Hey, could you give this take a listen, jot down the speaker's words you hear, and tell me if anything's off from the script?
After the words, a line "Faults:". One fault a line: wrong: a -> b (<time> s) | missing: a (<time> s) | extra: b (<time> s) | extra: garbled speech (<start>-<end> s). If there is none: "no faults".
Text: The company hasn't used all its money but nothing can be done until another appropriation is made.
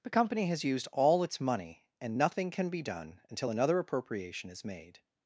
The company has used all its money and nothing can be done until another appropriation is made.
Faults:
wrong: hasn't -> has (0.5 s)
wrong: but -> and (2.0 s)